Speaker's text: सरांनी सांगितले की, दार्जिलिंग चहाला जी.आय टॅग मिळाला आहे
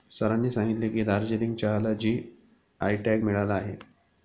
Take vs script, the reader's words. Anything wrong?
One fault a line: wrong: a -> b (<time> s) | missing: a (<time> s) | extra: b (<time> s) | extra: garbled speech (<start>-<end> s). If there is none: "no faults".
no faults